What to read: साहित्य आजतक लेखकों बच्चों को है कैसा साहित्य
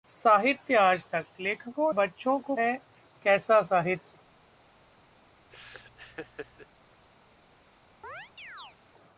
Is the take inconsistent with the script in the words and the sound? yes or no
yes